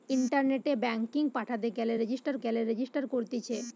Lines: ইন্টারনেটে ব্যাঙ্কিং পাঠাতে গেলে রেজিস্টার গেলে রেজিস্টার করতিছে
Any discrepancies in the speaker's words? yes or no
no